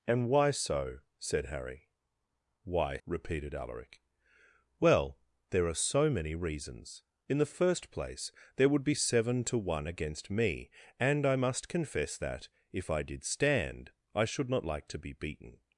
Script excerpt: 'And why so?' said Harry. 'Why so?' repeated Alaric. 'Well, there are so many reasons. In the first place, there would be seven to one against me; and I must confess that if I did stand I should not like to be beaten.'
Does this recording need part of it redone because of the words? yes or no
yes